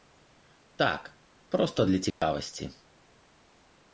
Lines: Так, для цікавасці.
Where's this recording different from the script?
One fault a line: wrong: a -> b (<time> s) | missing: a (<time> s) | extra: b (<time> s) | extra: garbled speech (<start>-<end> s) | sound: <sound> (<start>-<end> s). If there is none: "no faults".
extra: проста (1.5 s)
sound: dropout (2.1-2.2 s)